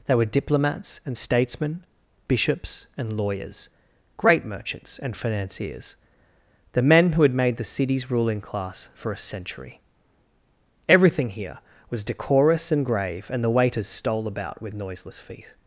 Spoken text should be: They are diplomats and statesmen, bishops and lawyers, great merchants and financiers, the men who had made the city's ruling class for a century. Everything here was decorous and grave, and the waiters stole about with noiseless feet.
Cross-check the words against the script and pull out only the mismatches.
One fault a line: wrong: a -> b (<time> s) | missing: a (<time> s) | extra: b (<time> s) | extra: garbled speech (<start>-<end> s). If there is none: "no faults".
wrong: are -> were (0.1 s)